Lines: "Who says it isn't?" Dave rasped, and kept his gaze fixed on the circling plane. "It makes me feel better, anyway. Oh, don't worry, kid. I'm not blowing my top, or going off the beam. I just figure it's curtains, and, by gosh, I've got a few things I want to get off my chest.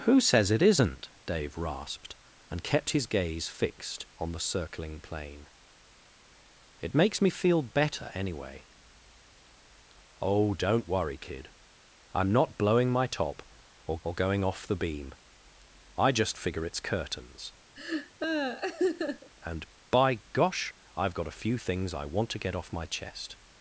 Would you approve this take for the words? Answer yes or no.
no